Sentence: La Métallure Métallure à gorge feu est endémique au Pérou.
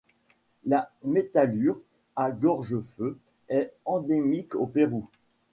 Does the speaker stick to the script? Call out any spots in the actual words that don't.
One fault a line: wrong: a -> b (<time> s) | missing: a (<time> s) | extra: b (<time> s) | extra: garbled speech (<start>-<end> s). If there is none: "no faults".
missing: Métallure (1.8 s)